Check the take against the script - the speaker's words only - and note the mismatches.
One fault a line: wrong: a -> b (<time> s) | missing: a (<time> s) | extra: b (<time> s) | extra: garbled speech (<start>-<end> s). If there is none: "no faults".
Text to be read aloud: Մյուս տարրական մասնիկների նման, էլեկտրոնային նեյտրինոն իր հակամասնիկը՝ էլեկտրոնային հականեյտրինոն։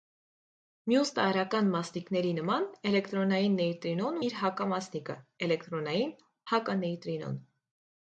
no faults